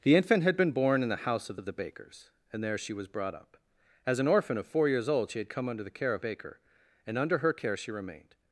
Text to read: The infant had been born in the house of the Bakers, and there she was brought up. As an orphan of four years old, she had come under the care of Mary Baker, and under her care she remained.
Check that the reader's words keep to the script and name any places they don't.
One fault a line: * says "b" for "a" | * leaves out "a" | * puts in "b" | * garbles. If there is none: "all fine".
* puts in "of"
* leaves out "Mary"